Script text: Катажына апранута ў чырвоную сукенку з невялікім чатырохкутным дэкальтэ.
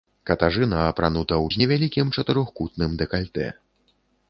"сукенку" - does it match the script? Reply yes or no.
no